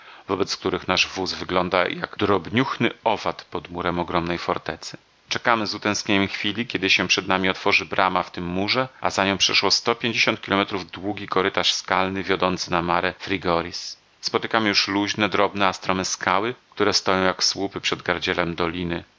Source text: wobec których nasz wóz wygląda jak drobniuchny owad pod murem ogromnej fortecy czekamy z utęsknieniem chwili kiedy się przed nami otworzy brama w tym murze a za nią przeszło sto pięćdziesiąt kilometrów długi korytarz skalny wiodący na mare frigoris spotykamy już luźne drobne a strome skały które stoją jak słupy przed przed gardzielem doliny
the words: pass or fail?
fail